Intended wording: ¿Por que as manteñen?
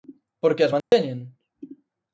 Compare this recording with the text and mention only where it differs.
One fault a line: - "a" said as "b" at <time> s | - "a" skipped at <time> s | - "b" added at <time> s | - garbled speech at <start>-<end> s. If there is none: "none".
none